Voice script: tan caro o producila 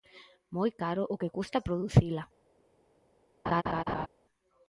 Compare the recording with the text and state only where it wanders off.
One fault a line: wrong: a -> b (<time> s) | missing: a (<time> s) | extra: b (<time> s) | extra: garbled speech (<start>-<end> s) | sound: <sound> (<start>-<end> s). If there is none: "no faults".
wrong: tan -> moi (0.6 s)
extra: que custa (1.2 s)
sound: laugh (3.5-4.1 s)